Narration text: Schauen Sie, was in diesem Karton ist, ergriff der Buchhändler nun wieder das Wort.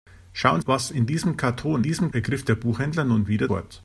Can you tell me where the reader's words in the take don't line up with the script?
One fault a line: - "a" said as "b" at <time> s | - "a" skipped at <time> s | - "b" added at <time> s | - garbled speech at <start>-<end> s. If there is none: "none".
- "Sie" skipped at 0.6 s
- "ist" said as "diesem" at 1.8 s
- "das" skipped at 3.5 s